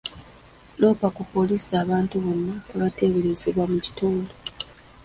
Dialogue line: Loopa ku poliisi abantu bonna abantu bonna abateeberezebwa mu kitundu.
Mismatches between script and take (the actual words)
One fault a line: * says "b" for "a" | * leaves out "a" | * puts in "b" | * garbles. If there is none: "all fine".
* leaves out "abantu bonna"